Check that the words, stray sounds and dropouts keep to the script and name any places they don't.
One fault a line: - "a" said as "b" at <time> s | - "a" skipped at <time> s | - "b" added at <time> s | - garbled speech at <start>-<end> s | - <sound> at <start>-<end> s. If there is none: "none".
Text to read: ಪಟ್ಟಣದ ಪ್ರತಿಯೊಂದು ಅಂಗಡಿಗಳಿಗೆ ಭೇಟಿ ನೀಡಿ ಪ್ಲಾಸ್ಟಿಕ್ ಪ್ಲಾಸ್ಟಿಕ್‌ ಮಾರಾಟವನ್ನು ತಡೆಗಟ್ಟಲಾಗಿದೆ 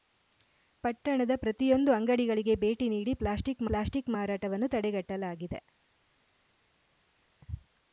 none